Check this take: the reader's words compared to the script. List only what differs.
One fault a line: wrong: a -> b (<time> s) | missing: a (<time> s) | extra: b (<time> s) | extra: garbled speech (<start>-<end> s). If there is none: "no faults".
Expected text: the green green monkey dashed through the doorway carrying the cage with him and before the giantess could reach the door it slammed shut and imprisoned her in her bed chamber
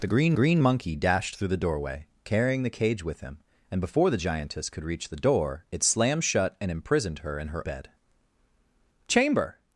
no faults